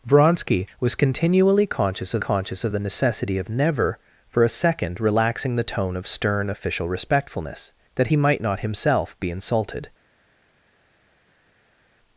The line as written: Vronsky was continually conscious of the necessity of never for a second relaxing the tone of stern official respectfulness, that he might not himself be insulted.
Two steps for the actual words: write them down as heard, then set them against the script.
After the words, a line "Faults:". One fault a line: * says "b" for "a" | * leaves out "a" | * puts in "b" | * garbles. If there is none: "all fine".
Vronsky was continually conscious of conscious of the necessity of never for a second relaxing the tone of stern official respectfulness, that he might not himself be insulted.
Faults:
* puts in "conscious of"